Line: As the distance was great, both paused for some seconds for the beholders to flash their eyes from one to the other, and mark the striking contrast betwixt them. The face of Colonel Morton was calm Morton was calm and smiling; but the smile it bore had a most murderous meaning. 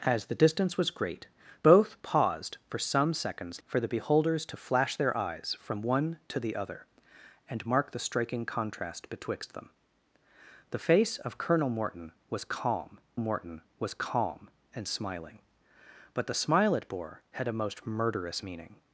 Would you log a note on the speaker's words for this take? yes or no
no